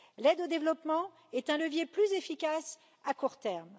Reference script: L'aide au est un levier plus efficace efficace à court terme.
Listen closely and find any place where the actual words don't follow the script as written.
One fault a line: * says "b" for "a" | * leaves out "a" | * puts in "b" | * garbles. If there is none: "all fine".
* puts in "développement"
* leaves out "efficace"